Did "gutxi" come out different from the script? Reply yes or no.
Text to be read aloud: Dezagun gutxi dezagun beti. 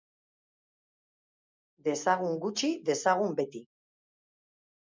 no